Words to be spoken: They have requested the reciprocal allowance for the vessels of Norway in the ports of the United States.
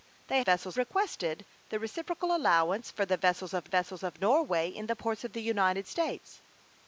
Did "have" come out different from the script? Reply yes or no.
yes